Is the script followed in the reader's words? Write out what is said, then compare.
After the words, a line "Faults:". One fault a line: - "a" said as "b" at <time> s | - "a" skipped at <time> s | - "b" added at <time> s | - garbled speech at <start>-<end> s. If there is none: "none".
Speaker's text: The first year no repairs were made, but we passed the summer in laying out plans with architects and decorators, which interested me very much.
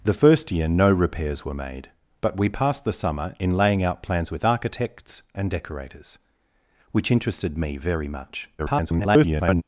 The first year no repairs were made, but we passed the summer in laying out plans with architects and decorators, which interested me very much. [garbled]
Faults:
- garbled speech at 8.6-9.6 s